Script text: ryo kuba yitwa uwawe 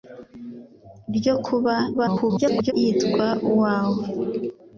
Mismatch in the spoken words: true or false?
true